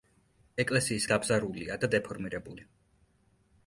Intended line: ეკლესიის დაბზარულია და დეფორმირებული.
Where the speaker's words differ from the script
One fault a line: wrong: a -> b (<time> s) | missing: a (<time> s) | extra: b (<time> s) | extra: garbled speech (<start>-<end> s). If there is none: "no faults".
no faults